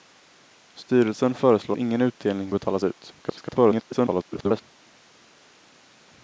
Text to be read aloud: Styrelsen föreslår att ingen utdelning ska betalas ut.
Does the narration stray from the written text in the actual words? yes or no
yes